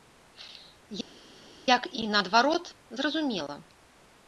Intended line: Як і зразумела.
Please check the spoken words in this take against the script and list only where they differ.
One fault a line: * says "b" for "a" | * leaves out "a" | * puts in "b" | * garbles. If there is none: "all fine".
* puts in "наадварот"